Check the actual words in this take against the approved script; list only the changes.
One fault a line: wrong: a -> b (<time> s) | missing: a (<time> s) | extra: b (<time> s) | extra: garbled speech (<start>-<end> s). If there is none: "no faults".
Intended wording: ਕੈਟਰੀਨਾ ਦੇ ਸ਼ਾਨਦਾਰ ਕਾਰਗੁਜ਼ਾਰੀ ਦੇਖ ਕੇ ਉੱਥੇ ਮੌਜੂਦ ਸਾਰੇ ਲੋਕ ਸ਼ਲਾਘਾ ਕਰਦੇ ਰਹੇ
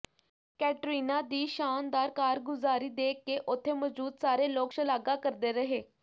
wrong: ਦੇ -> ਦੀ (1.2 s)